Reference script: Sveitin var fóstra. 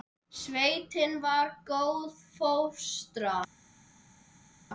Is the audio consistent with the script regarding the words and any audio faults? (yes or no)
no